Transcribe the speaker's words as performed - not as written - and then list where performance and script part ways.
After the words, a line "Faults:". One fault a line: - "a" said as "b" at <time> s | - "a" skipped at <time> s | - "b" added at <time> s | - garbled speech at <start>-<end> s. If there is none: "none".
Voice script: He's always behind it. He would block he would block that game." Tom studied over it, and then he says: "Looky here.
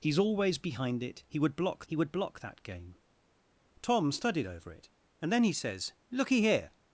He's always behind it. He would block he would block that game." Tom studied over it, and then he says: "Looky here.
Faults:
none